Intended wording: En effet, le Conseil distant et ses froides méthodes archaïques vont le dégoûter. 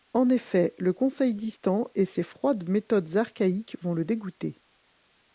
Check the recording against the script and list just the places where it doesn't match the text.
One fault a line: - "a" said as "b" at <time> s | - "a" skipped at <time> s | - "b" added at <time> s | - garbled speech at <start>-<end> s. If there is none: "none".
none